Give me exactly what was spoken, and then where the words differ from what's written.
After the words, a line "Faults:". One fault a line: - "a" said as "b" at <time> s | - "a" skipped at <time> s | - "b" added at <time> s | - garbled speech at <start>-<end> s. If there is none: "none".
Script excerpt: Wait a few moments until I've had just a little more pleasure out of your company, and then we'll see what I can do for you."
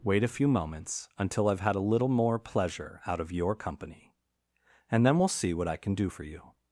Wait a few moments until I've had a little more pleasure out of your company, and then we'll see what I can do for you."
Faults:
- "just" skipped at 1.8 s